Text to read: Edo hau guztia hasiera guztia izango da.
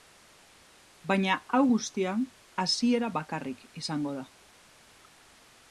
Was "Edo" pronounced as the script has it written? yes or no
no